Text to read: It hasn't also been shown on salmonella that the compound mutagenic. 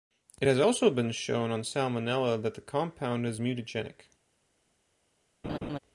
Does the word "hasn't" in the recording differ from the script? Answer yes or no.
yes